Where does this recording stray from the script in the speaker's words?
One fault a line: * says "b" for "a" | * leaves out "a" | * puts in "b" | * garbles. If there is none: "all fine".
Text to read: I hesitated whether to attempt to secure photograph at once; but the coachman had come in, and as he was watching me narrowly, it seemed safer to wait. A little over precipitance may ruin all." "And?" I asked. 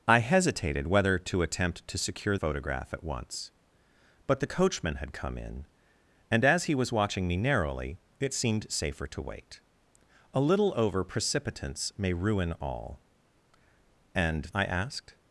all fine